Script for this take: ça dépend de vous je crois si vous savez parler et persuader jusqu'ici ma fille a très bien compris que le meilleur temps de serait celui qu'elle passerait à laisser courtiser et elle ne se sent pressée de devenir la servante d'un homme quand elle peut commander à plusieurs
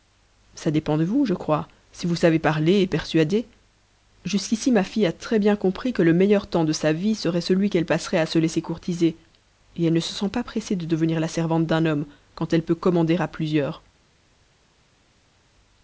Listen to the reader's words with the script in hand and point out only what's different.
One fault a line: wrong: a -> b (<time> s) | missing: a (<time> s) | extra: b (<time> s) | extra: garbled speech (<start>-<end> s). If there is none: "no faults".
extra: sa vie (6.7 s)
extra: se (8.2 s)
extra: pas (10.3 s)